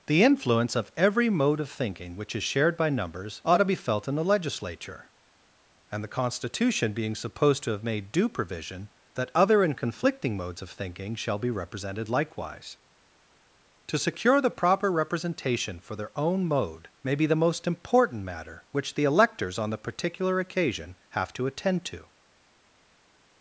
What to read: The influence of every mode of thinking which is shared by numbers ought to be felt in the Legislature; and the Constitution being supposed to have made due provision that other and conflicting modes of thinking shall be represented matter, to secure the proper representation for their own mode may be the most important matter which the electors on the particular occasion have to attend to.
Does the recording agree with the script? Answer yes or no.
no